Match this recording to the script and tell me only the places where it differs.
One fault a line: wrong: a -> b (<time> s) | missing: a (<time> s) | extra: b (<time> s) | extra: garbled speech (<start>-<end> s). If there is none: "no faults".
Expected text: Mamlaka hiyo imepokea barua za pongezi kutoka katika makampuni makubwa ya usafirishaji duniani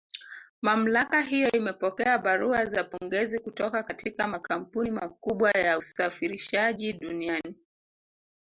no faults